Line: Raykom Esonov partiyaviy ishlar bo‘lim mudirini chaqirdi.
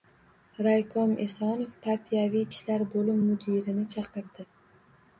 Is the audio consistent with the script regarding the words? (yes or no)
yes